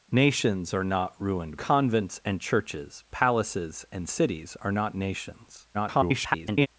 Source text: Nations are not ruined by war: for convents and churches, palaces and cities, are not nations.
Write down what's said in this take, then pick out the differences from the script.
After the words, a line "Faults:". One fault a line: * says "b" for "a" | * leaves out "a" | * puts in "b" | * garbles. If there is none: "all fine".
Nations are not ruined convents and churches, palaces and cities, are not nations. [garbled]
Faults:
* leaves out "by war for"
* garbles